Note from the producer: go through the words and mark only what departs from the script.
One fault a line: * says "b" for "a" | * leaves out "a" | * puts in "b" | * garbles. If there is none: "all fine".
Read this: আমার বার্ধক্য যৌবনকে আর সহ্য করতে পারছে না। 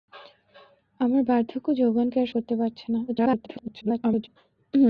* leaves out "সহ্য"
* garbles